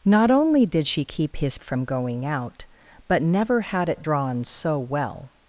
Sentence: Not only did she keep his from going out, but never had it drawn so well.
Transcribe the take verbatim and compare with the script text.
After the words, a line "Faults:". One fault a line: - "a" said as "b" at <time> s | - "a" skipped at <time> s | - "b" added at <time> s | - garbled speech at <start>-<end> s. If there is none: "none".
Not only did she keep his from going out, but never had it drawn so well.
Faults:
none